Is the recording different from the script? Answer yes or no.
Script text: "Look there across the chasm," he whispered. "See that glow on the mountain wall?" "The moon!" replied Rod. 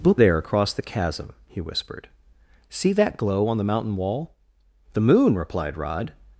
no